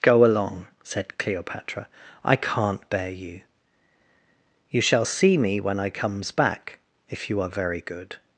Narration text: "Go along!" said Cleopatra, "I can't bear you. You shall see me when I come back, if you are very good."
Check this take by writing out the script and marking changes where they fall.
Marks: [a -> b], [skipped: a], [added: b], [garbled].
"Go along!" said Cleopatra, "I can't bear you. You shall see me when I [come -> comes] back, if you are very good."